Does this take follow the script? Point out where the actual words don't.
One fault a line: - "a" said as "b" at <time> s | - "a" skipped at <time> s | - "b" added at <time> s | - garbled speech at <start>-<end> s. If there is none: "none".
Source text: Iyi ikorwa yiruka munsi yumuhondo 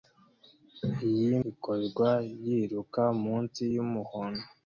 none